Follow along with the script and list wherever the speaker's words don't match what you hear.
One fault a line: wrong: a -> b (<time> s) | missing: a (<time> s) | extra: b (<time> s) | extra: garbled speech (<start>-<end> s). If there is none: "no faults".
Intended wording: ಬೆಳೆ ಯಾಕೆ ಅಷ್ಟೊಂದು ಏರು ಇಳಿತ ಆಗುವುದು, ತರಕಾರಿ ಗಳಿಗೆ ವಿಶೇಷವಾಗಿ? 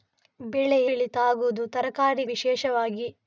missing: ಯಾಕೆ ಅಷ್ಟೊಂದು ಏರು (0.8 s)
missing: ಗಳಿಗೆ (2.2 s)